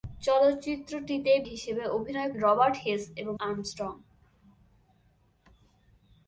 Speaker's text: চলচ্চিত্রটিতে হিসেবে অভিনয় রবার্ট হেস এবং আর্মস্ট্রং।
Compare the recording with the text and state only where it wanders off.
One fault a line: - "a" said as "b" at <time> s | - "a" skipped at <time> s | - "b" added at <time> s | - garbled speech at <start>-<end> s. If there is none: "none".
none